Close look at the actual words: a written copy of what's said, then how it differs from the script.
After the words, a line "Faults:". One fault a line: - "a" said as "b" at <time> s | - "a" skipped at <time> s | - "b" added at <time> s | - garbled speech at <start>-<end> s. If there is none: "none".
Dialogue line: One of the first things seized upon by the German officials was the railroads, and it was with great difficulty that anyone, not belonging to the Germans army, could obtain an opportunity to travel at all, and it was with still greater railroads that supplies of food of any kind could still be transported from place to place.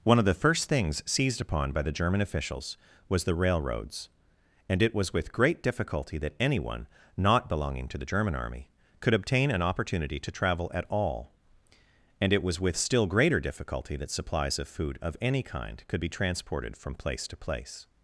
One of the first things seized upon by the German officials was the railroads, and it was with great difficulty that anyone, not belonging to the German army, could obtain an opportunity to travel at all, and it was with still greater difficulty that supplies of food of any kind could be transported from place to place.
Faults:
- "Germans" said as "German" at 8.1 s
- "railroads" said as "difficulty" at 13.4 s
- "still" skipped at 16.0 s